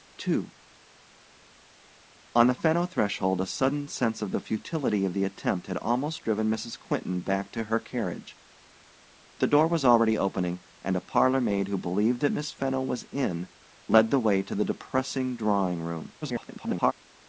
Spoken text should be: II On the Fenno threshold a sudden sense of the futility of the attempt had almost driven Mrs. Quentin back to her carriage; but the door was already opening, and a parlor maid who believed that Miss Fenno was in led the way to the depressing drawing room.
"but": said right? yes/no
no